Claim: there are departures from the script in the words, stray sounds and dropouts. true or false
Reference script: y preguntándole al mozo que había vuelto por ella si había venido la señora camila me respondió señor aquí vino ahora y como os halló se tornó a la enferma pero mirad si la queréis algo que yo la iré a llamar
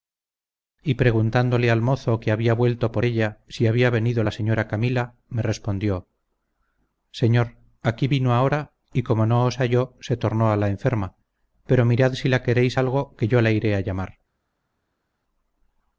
true